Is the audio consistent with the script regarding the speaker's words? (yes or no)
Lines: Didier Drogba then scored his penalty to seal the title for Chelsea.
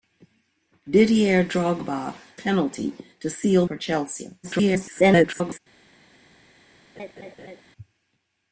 no